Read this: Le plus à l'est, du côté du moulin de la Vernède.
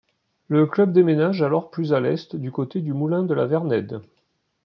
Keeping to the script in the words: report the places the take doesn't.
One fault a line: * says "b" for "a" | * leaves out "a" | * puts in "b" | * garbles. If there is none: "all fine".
* puts in "club déménage alors"